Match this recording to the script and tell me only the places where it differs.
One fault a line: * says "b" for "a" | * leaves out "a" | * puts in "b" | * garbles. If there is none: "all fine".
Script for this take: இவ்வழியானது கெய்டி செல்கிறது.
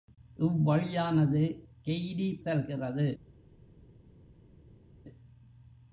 all fine